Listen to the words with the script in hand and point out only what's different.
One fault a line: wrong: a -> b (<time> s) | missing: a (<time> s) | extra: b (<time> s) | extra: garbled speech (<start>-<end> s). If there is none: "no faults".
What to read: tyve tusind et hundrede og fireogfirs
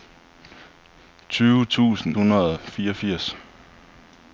missing: et (2.2 s)